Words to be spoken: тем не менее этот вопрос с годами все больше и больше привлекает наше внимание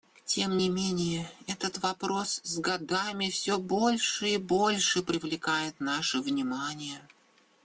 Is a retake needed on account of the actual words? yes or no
no